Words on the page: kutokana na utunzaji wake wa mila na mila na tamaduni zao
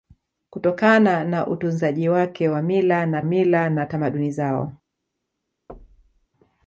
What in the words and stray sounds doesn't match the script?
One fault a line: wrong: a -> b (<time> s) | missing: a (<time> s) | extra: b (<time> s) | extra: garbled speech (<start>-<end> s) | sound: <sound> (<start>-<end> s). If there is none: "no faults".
sound: thud (5.7-6.3 s)